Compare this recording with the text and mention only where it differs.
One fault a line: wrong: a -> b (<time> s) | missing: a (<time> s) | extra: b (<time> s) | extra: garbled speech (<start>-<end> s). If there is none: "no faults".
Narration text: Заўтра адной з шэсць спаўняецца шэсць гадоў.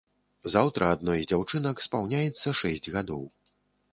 wrong: шэсць -> дзяўчынак (1.3 s)